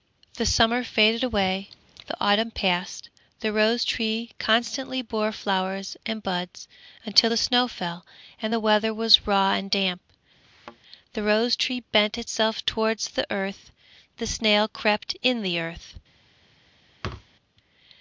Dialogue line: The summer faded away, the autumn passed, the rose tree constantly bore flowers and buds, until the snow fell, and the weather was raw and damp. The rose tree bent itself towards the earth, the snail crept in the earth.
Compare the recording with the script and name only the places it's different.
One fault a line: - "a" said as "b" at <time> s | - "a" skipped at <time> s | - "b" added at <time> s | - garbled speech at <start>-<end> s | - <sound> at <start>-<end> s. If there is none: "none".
- thud at 10.4-10.8 s
- thud at 17.0-17.3 s